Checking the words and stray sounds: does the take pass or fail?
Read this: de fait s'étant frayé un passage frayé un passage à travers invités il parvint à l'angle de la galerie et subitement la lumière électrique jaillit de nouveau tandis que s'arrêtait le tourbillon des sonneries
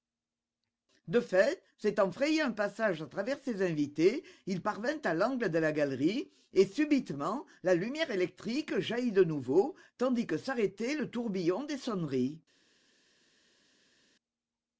fail